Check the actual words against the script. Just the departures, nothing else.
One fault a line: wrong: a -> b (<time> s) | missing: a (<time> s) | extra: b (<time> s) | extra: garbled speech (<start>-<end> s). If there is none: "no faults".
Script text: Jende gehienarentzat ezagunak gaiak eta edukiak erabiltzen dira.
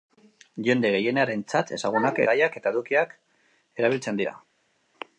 no faults